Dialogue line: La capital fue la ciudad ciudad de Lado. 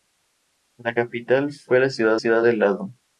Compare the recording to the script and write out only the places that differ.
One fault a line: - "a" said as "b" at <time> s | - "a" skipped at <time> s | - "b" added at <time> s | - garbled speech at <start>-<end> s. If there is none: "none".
none